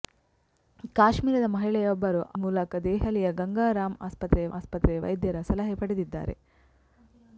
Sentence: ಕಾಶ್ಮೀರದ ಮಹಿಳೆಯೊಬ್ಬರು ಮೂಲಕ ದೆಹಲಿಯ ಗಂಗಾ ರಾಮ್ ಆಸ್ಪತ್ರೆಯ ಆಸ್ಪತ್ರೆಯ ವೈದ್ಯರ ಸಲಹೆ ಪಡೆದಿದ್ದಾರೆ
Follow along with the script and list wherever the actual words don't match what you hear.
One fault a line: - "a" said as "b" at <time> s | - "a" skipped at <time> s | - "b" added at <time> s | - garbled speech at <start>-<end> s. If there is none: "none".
none